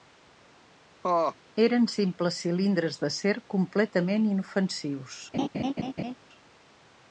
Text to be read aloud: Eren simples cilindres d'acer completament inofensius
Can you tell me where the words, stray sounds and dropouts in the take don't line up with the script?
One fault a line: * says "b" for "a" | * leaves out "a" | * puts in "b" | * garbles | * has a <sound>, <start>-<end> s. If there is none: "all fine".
* has a laugh, 1.0-1.4 s
* has a laugh, 5.3-6.1 s